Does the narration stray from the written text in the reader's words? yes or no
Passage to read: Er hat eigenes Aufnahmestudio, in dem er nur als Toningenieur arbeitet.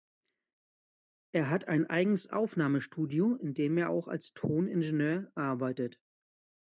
yes